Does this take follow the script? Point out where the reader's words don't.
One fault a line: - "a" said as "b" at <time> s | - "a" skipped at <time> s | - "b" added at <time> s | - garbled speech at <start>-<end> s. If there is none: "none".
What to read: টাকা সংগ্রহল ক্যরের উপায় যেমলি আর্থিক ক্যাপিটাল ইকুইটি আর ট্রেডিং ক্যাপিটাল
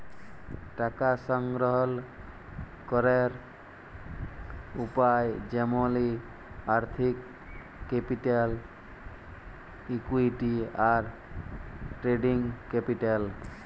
none